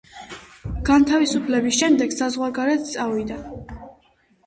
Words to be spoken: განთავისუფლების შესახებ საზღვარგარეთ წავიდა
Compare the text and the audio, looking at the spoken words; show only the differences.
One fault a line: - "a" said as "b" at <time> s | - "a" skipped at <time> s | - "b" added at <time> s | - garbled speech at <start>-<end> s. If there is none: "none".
- "შესახებ" said as "შემდეგ" at 1.8 s